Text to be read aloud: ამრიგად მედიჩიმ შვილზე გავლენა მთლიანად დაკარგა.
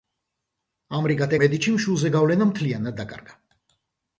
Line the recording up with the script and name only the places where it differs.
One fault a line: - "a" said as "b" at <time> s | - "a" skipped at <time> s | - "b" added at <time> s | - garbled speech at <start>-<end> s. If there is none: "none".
none